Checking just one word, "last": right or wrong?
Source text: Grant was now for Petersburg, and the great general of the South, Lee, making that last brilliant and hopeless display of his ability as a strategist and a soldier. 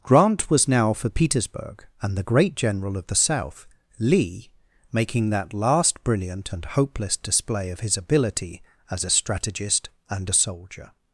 right